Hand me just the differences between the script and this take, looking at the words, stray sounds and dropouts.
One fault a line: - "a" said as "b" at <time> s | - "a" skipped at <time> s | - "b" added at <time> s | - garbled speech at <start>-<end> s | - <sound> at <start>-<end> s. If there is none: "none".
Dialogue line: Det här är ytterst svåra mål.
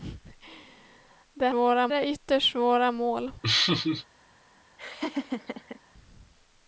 - "här" said as "svåra" at 1.5 s
- laugh at 3.4-4.1 s
- laugh at 4.8-5.8 s